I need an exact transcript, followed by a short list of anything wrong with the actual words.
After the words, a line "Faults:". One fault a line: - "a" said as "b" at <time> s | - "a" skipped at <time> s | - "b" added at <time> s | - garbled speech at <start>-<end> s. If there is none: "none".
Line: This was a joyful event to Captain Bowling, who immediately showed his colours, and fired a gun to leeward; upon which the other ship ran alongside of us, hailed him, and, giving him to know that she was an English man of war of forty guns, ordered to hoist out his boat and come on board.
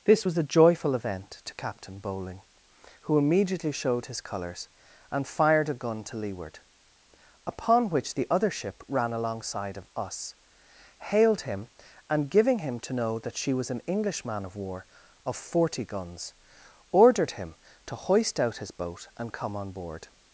This was a joyful event to Captain Bowling, who immediately showed his colours, and fired a gun to leeward; upon which the other ship ran alongside of us, hailed him, and, giving him to know that she was an English man of war of forty guns, ordered him to hoist out his boat and come on board.
Faults:
- "him" added at 17.3 s